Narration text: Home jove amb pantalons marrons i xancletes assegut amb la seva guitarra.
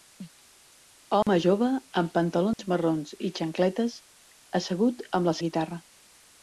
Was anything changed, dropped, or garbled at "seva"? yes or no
yes